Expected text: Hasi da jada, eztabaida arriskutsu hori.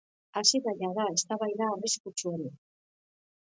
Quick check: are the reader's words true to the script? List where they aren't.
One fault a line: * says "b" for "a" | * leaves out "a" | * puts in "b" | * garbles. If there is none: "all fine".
all fine